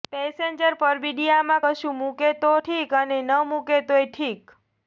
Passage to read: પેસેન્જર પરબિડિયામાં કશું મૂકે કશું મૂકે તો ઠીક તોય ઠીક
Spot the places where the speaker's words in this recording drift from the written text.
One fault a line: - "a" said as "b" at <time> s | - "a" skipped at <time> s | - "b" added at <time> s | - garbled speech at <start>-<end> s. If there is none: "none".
- "કશું મૂકે તો ઠીક" said as "તો ઠીક અને ન મૂકે" at 2.4 s